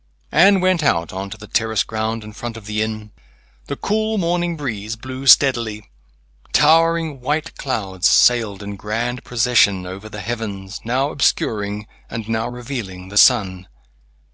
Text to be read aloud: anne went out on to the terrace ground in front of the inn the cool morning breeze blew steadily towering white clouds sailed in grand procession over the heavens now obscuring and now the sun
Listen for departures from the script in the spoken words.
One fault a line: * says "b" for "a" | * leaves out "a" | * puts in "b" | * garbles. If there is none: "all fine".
* puts in "revealing"